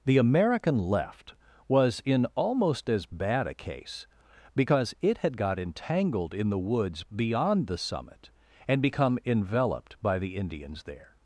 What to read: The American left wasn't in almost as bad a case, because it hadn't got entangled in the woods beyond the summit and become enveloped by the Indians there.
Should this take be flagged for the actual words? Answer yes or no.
yes